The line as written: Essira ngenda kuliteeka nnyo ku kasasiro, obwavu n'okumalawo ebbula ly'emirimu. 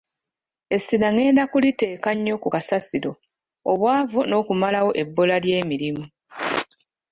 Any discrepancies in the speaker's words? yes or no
no